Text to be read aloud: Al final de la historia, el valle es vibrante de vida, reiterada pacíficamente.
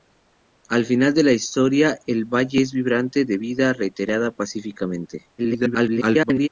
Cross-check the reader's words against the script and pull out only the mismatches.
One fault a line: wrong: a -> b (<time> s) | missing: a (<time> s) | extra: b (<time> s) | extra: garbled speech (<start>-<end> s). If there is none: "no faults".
extra: garbled speech (5.4-6.5 s)